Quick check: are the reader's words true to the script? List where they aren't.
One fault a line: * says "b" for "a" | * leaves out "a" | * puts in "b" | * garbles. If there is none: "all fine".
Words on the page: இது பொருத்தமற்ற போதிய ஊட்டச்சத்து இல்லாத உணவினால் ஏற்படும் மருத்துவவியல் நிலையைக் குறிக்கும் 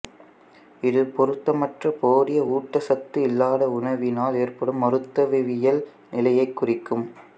all fine